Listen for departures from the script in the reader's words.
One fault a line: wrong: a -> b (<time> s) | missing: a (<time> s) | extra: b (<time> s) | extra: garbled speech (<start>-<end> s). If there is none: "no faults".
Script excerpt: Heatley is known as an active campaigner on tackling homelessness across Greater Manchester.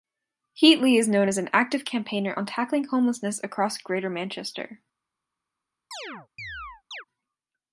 no faults